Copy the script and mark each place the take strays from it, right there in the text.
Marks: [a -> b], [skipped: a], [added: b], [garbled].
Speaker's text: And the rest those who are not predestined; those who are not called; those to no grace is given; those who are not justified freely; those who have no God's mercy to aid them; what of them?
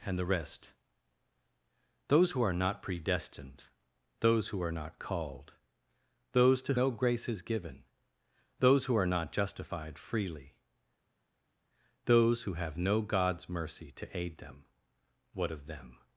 And the rest those who are not predestined; those who are not called; those to no grace is given; those who are not justified freely; those who have no God's mercy to aid them; what of them?